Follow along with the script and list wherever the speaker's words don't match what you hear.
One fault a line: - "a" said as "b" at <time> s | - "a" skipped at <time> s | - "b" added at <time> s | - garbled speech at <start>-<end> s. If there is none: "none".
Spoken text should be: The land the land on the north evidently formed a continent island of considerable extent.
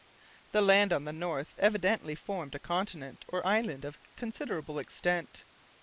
- "the land" skipped at 0.9 s
- "or" added at 3.3 s